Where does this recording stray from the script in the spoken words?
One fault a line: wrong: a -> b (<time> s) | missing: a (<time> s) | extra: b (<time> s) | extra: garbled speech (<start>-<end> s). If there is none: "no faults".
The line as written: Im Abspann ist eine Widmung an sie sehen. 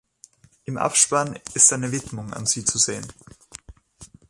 extra: zu (2.6 s)